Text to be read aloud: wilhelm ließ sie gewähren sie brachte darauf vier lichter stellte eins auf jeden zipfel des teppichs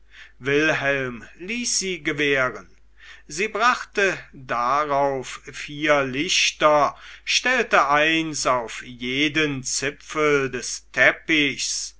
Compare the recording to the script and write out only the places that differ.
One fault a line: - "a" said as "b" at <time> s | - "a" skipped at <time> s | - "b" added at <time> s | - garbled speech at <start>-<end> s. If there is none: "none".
none